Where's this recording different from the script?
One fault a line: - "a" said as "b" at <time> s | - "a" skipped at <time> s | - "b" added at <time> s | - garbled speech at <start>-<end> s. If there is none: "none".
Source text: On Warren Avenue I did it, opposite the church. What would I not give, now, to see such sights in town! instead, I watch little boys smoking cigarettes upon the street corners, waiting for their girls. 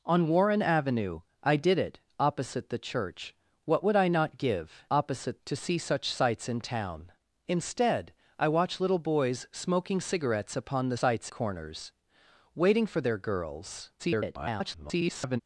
- "now" said as "opposite" at 4.9 s
- "street" said as "sights" at 10.9 s
- garbled speech at 14.0-15.4 s